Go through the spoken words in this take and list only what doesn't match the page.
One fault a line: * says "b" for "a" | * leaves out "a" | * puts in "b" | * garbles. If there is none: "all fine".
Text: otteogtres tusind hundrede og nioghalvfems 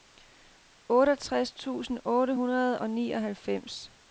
* puts in "otte"